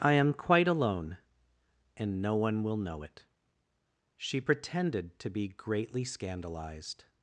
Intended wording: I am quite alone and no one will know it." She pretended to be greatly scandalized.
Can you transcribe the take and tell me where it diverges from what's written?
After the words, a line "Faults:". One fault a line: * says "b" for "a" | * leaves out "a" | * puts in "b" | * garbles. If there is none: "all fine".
I am quite alone and no one will know it." She pretended to be greatly scandalized.
Faults:
all fine